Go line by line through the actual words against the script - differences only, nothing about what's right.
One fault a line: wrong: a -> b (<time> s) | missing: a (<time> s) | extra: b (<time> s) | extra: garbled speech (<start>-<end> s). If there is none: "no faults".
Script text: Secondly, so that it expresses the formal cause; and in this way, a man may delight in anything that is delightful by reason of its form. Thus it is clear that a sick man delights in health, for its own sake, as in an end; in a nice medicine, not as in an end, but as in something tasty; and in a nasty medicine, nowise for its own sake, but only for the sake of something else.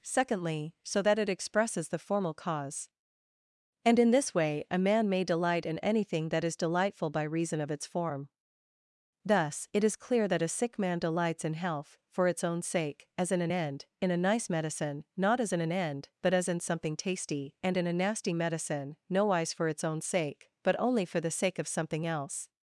no faults